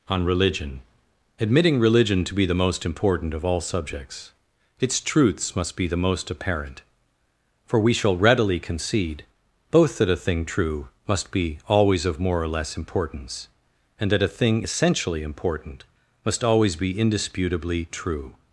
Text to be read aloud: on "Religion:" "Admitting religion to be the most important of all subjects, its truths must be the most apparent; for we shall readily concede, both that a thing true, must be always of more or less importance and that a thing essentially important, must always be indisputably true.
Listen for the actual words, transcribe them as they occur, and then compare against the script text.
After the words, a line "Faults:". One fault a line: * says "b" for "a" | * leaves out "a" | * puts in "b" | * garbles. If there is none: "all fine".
on "Religion:" "Admitting religion to be the most important of all subjects, its truths must be the most apparent; for we shall readily concede, both that a thing true, must be always of more or less importance and that a thing essentially important, must always be indisputably true.
Faults:
all fine